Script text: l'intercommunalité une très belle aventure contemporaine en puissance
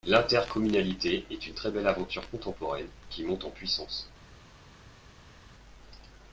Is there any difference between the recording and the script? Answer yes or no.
yes